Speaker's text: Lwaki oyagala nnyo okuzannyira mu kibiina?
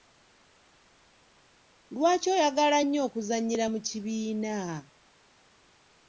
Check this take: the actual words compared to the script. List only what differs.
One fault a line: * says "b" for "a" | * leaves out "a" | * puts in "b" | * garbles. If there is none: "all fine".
all fine